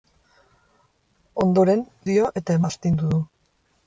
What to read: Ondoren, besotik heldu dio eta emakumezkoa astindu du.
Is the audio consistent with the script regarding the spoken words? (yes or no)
no